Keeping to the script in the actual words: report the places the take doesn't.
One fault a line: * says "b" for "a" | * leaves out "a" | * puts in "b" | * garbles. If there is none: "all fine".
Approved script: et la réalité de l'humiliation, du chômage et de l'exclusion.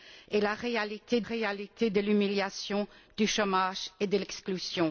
* puts in "réalité"